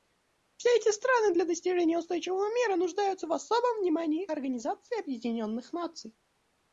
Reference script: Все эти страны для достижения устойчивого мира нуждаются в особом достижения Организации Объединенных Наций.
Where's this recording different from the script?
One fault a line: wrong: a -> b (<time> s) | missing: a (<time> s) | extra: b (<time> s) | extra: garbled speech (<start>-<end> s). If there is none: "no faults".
wrong: достижения -> внимании (3.8 s)